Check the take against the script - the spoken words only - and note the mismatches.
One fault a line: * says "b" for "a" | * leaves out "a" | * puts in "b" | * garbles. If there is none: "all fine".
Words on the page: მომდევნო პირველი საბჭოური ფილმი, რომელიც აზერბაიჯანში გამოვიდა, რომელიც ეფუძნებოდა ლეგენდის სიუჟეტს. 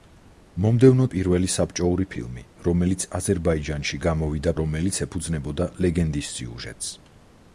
all fine